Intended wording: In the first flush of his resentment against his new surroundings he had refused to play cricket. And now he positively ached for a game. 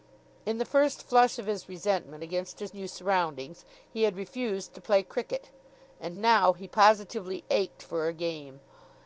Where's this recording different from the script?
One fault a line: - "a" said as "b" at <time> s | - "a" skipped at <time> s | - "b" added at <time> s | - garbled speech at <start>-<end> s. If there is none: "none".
none